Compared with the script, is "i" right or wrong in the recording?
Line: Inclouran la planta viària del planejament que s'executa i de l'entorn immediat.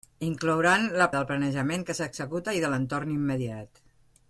right